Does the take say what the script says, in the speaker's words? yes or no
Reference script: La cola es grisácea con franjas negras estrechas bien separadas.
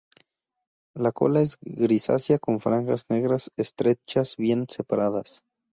yes